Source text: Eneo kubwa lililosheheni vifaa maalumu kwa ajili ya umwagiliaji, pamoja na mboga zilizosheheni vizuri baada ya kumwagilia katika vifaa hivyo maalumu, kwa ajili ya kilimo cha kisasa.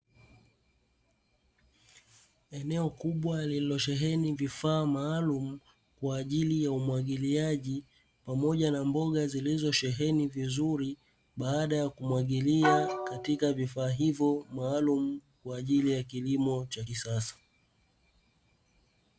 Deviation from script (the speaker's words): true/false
false